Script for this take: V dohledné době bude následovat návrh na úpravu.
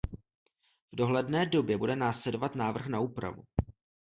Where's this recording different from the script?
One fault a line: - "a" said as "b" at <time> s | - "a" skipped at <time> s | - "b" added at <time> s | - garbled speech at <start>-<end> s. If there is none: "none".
none